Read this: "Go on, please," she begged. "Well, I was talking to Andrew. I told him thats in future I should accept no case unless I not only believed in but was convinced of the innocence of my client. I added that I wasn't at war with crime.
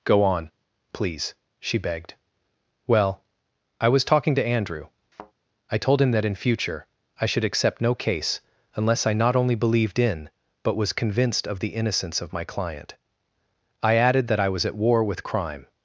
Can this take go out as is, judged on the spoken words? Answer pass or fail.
fail